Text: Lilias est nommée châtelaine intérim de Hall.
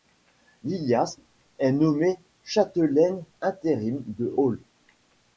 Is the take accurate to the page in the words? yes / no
yes